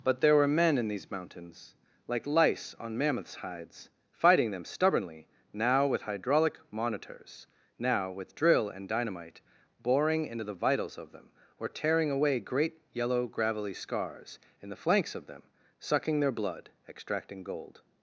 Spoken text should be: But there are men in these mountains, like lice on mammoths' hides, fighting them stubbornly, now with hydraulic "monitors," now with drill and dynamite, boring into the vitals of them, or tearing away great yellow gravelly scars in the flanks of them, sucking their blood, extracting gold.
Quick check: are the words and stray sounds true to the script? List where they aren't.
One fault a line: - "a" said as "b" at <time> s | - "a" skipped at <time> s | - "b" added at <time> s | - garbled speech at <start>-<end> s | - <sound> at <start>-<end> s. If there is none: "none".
- "are" said as "were" at 0.3 s